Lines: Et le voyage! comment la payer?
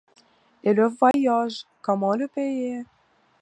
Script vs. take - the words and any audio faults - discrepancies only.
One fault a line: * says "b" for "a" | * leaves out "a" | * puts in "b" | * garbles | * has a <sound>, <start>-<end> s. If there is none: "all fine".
* has a dropout, 1.1-1.1 s
* says "le" for "la"